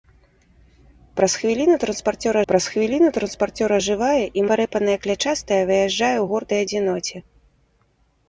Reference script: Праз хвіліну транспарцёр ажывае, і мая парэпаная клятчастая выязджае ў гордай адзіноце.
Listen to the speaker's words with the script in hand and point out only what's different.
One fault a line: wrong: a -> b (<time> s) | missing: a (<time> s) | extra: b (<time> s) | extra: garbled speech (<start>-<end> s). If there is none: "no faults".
extra: праз хвіліну транспарцёр (2.5 s)
missing: мая (4.5 s)